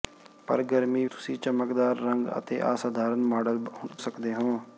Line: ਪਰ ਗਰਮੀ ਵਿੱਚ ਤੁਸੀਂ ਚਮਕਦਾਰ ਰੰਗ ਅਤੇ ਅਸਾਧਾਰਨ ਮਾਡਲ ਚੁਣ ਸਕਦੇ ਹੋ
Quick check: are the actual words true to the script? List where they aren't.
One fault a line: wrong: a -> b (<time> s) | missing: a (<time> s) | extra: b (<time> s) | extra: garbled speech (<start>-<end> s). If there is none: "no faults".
missing: ਵਿੱਚ (1.1 s)
missing: ਚੁਣ (3.6 s)